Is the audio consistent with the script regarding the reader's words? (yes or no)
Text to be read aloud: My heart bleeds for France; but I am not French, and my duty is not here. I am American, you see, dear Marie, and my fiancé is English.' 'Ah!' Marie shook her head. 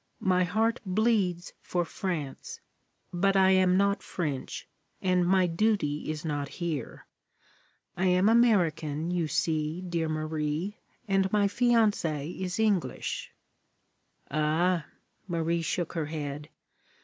yes